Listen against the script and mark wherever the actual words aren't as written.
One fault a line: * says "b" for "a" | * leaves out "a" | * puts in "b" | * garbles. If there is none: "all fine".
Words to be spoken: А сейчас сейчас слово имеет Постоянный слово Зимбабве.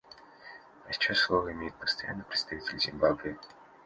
* leaves out "сейчас"
* says "представитель" for "слово"